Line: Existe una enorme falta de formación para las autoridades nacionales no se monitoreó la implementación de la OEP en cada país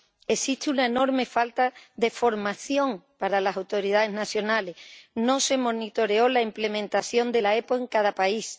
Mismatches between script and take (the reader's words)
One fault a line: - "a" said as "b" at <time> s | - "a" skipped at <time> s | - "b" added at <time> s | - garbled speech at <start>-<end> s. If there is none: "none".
none